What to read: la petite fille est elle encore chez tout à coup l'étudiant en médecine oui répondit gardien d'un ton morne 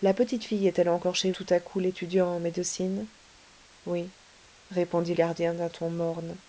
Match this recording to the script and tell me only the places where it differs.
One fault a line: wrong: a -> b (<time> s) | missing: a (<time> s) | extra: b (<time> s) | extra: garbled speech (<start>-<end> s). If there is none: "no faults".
no faults